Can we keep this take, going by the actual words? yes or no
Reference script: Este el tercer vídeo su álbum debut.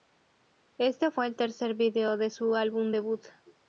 no